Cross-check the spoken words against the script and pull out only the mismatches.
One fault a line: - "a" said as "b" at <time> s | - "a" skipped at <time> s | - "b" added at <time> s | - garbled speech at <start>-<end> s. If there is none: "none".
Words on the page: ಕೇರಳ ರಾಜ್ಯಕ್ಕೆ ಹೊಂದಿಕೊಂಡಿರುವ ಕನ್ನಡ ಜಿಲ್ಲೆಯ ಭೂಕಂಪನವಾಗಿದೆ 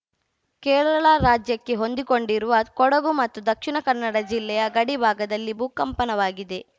- "ಕೊಡಗು ಮತ್ತು ದಕ್ಷಿಣ" added at 2.7 s
- "ಗಡಿ ಭಾಗದಲ್ಲಿ" added at 4.7 s